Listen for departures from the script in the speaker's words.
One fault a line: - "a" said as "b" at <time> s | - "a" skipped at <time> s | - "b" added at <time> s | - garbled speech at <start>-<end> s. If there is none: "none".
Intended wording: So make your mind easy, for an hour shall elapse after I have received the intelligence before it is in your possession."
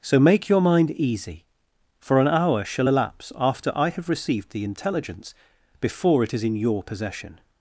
none